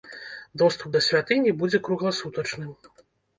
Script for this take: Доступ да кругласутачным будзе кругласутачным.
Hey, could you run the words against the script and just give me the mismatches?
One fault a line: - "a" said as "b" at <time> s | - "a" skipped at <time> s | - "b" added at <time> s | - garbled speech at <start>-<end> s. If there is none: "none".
- "кругласутачным" said as "святыні" at 1.1 s